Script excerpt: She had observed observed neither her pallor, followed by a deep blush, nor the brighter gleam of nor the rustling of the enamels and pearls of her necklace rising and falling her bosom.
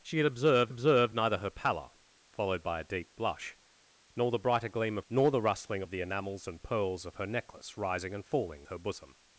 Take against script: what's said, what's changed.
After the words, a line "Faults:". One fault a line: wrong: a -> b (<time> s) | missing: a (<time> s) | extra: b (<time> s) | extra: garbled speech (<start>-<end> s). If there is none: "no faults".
She had observed observed neither her pallor, followed by a deep blush, nor the brighter gleam of nor the rustling of the enamels and pearls of her necklace rising and falling her bosom.
Faults:
no faults